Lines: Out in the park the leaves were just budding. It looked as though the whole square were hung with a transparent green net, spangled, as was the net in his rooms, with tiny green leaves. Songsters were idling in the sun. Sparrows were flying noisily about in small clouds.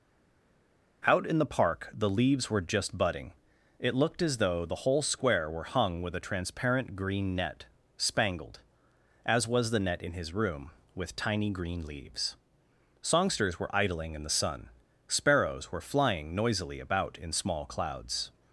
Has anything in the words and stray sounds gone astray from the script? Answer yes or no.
yes